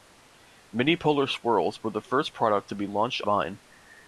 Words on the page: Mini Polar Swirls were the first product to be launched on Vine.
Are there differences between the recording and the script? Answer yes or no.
yes